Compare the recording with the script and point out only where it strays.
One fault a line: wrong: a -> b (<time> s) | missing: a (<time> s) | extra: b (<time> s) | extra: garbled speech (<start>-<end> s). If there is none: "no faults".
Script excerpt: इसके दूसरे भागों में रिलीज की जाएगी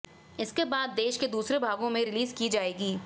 extra: बाद देश के (0.7 s)